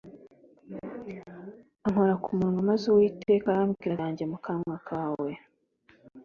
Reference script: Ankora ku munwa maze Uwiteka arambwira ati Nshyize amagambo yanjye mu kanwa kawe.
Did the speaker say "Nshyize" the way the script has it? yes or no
no